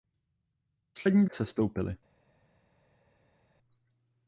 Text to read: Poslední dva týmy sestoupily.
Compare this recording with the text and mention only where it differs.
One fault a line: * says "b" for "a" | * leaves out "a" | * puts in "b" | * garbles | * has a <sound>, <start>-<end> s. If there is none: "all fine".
* leaves out "dva týmy"